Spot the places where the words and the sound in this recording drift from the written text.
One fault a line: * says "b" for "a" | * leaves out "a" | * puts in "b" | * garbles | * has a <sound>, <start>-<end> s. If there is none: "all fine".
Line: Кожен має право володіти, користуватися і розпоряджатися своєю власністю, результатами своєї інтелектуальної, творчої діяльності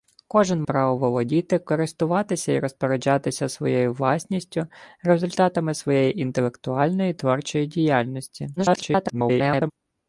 * leaves out "має"
* garbles